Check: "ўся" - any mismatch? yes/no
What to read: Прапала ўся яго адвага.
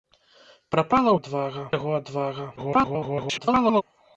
yes